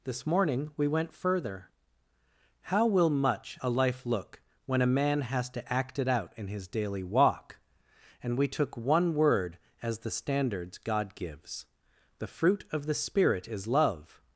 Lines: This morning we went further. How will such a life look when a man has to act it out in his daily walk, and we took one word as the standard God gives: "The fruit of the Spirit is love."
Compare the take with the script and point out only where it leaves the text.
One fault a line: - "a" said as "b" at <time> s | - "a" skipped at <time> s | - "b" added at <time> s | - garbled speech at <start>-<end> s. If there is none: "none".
- "such" said as "much" at 3.1 s
- "standard" said as "standards" at 10.1 s